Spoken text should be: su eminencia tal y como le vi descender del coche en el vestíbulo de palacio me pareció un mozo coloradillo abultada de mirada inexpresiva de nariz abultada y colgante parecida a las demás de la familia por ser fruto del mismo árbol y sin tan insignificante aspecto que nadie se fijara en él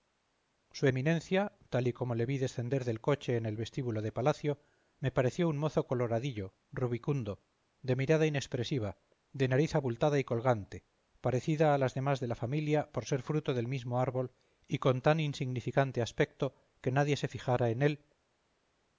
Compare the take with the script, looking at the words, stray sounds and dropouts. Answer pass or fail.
fail